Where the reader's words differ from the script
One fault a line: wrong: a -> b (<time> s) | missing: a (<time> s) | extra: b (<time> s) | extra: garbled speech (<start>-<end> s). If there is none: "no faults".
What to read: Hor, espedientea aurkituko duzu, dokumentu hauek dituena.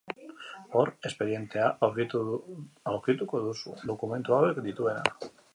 no faults